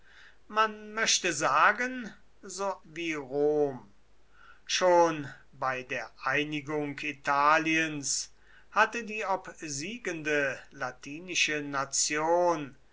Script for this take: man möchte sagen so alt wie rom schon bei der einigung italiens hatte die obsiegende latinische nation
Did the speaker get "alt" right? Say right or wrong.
wrong